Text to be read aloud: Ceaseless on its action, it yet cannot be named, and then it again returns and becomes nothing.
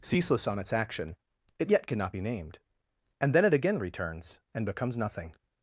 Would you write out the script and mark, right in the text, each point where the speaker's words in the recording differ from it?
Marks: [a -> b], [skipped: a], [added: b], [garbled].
Ceaseless on its action, it yet cannot be named, and then it again returns and becomes nothing.